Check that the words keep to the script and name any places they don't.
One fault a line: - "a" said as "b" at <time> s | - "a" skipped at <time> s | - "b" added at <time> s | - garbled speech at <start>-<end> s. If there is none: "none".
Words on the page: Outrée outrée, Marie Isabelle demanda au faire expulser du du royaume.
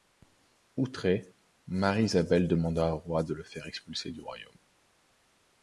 - "outrée" skipped at 1.3 s
- "roi de le" added at 3.0 s
- "du" skipped at 4.2 s